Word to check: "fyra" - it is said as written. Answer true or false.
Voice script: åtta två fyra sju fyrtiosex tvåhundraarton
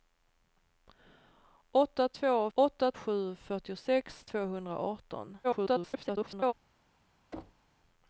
false